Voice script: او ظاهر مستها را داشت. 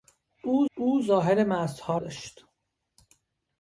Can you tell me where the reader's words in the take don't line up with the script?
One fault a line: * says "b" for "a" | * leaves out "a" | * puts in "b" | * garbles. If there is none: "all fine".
* puts in "او"
* leaves out "را"